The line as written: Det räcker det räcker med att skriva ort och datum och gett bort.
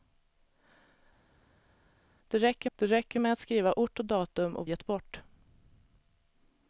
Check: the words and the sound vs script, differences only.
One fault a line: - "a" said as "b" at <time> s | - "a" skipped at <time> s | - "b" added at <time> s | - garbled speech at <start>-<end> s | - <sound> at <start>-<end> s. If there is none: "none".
none